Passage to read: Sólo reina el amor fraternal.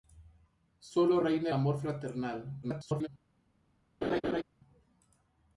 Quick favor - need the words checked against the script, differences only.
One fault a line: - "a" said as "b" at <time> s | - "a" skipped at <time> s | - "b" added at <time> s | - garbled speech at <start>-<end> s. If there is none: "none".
- "el" skipped at 1.5 s
- garbled speech at 2.6-3.1 s